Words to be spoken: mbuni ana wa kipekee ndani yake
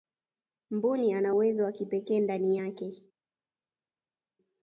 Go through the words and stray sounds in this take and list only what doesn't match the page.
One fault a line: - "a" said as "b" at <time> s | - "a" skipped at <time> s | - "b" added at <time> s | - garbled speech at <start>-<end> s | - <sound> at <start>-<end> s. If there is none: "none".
- "uwezo" added at 1.3 s